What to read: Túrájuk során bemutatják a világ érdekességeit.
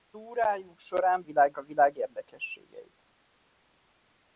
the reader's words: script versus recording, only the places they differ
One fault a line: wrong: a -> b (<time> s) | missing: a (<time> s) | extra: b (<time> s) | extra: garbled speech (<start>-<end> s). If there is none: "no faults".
wrong: bemutatják -> világ (1.2 s)